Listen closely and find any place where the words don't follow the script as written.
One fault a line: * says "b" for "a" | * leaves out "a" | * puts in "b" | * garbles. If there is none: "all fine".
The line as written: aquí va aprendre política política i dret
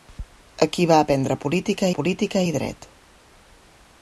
all fine